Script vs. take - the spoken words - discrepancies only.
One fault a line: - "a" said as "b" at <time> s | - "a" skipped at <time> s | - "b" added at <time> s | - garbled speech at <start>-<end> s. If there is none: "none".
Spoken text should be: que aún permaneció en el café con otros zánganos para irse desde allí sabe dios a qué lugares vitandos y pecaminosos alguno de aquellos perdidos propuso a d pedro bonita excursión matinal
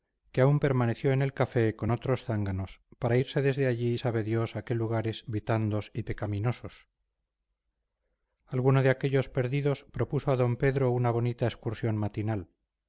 - "una" added at 10.9 s